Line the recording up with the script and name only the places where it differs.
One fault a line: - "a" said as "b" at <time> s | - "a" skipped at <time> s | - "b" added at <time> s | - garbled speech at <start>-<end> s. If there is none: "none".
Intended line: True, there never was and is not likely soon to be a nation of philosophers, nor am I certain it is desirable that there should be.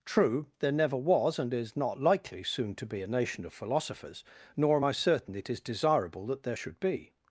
none